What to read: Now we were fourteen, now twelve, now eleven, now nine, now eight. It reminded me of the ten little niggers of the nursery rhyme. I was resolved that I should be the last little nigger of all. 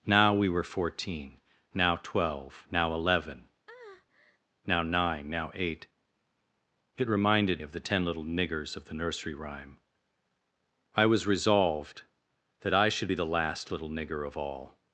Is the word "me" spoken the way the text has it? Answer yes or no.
no